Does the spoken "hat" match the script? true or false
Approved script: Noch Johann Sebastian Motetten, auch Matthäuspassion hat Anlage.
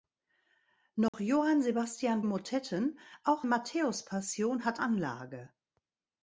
true